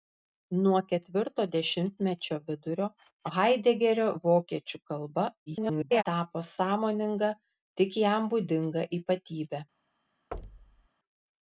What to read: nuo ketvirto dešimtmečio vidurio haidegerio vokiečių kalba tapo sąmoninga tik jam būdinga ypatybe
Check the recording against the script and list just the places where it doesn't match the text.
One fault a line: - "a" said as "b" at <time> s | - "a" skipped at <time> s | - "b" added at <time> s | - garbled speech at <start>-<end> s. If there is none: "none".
- garbled speech at 5.5-6.0 s